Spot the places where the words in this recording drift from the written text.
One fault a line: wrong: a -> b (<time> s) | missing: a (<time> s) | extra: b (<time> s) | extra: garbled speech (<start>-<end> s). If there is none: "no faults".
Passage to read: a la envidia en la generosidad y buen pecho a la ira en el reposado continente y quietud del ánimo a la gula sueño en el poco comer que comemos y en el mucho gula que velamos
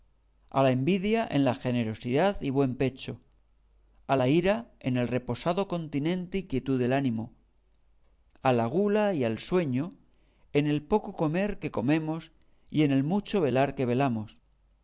extra: y al (9.1 s)
wrong: gula -> velar (13.4 s)